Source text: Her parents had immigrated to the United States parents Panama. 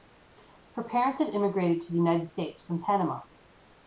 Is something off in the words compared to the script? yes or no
yes